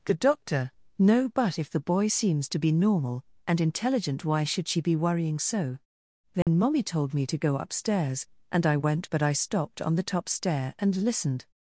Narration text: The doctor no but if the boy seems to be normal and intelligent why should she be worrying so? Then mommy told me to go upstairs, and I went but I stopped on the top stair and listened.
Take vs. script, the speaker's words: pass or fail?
pass